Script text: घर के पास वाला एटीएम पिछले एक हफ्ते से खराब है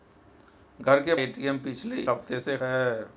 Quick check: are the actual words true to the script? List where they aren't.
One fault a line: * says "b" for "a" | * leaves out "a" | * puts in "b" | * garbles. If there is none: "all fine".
* leaves out "पास वाला"
* leaves out "एक"
* leaves out "खराब"